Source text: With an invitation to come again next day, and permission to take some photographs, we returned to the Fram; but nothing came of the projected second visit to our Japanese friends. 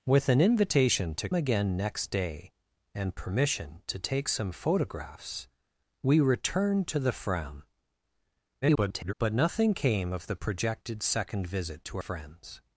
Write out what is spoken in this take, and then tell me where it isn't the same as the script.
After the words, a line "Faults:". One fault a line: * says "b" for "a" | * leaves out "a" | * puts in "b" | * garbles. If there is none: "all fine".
With an invitation to again next day, and permission to take some photographs, we returned to the Fram; [garbled] but nothing came of the projected second visit to friends.
Faults:
* leaves out "come"
* garbles
* leaves out "our Japanese"